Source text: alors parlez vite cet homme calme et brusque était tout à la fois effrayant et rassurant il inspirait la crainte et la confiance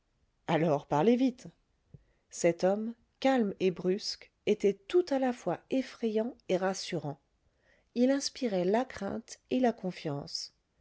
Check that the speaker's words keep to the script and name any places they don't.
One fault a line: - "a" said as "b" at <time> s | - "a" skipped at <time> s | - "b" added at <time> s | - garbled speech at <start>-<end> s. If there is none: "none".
none